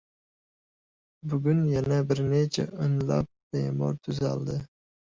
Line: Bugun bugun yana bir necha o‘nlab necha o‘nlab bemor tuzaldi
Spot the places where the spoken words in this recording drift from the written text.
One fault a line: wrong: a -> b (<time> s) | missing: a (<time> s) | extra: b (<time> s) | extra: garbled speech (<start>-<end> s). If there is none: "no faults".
missing: bugun (1.6 s)
missing: necha o‘nlab (3.3 s)